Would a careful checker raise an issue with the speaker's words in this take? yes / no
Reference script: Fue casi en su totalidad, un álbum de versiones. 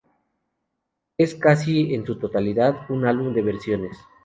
yes